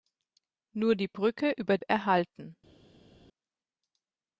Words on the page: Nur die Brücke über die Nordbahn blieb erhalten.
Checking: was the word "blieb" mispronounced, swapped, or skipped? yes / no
yes